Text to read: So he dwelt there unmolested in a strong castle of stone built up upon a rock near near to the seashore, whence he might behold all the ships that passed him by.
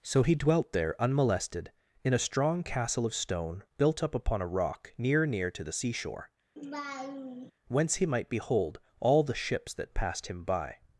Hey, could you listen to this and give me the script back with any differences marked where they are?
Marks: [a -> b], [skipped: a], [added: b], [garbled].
So he dwelt there unmolested in a strong castle of stone built up upon a rock near near to the seashore, whence he might behold all the ships that passed him by.